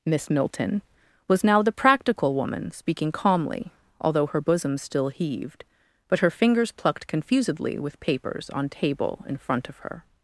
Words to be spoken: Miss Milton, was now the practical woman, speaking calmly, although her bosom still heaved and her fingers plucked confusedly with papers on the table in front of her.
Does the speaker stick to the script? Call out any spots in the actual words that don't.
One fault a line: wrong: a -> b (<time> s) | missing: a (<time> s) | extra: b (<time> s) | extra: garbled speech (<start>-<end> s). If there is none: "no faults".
wrong: and -> but (6.1 s)
missing: the (8.7 s)